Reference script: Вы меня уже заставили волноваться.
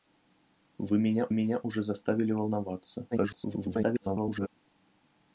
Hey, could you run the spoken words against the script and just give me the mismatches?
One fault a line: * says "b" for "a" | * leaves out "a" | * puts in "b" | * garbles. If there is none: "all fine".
* puts in "меня"
* garbles